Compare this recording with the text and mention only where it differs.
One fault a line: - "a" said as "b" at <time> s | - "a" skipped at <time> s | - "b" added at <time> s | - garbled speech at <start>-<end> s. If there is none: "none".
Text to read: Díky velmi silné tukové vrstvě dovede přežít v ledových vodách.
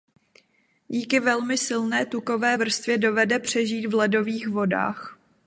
none